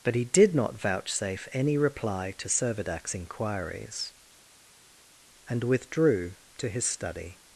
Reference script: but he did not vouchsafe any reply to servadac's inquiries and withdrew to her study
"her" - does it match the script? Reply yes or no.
no